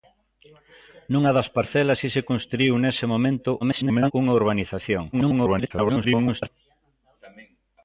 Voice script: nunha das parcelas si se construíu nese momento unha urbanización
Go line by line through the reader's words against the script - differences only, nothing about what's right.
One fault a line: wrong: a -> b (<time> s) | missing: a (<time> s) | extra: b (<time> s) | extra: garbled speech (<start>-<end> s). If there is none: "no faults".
extra: garbled speech (3.6-4.1 s)
extra: garbled speech (5.1-6.5 s)